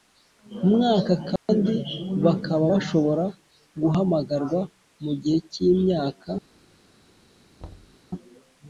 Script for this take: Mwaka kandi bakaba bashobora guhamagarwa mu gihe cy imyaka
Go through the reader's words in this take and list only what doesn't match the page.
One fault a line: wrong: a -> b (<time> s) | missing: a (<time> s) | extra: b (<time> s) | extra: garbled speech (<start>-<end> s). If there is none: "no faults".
no faults